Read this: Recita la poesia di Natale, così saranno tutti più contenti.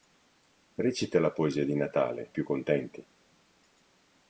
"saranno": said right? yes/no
no